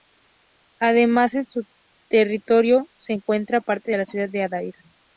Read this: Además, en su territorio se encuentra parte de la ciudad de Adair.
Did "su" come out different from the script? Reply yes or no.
no